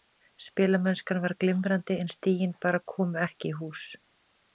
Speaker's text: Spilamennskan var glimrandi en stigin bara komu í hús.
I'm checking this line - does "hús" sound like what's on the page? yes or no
yes